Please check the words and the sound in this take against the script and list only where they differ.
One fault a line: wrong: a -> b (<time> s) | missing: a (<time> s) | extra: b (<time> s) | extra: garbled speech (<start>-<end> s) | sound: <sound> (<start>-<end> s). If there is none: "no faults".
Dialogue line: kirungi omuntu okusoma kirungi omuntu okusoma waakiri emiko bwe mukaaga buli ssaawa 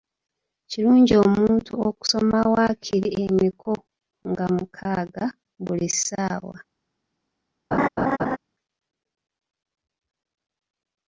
missing: kirungi omuntu okusoma (2.4 s)
wrong: bwe -> nga (4.3 s)
sound: laugh (7.7-8.4 s)